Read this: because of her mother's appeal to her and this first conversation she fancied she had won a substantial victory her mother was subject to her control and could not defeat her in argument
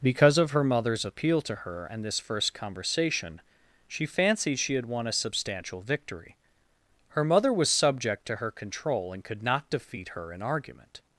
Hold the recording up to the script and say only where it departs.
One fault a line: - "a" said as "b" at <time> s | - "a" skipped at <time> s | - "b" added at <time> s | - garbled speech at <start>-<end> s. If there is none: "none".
none